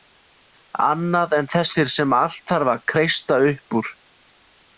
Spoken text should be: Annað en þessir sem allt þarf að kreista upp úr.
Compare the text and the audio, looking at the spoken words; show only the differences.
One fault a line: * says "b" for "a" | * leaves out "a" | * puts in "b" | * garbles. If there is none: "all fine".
all fine